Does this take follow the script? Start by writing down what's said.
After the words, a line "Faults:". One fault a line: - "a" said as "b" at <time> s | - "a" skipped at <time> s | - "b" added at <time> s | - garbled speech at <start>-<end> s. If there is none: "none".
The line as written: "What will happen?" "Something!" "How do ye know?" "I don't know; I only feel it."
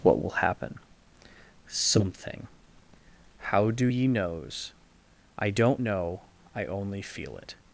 "What will happen?" "Something!" "How do ye knows?" "I don't know; I only feel it."
Faults:
- "know" said as "knows" at 4.1 s